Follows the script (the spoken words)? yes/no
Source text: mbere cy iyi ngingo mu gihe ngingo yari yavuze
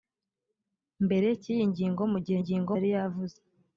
yes